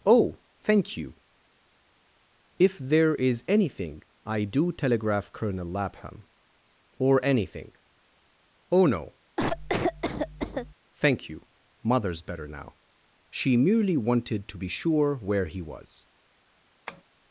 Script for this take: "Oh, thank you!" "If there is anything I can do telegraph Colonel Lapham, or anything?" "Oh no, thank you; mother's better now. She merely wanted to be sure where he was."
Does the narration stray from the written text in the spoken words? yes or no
yes